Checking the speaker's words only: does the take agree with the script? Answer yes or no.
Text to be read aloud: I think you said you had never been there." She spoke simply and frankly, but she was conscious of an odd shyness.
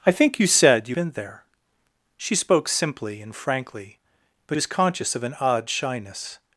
no